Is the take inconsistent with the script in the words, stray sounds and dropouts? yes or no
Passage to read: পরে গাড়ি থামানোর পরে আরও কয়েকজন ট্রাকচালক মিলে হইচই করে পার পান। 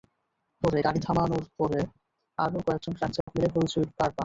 yes